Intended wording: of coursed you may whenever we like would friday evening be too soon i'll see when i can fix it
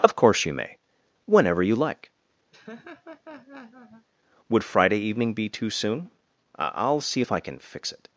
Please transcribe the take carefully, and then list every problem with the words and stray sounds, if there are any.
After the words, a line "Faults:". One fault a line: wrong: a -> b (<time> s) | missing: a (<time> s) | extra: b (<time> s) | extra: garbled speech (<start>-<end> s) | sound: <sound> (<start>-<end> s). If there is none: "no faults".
of course you may whenever you like would friday evening be too soon i'll see if i can fix it
Faults:
wrong: coursed -> course (0.1 s)
wrong: we -> you (1.6 s)
sound: laugh (2.5-4.1 s)
wrong: when -> if (7.2 s)